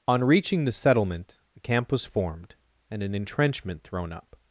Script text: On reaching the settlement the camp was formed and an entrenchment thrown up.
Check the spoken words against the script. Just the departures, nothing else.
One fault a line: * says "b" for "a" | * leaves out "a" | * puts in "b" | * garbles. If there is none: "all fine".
* says "a" for "the"